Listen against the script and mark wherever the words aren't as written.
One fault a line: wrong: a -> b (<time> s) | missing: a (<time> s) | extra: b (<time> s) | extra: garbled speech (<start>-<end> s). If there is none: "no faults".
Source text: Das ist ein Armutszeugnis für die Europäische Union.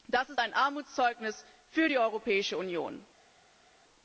no faults